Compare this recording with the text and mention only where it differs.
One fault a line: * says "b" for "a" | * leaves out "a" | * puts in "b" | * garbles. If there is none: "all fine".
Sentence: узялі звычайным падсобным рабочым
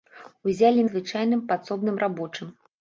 all fine